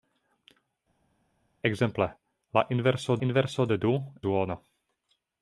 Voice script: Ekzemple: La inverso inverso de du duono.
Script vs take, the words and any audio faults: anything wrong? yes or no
no